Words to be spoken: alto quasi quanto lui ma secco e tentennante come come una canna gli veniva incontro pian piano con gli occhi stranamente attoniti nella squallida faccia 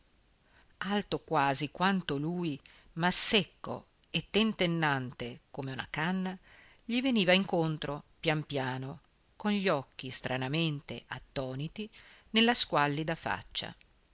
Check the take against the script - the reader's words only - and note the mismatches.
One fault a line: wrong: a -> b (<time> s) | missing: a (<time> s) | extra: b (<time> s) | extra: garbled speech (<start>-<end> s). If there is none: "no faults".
missing: come (5.7 s)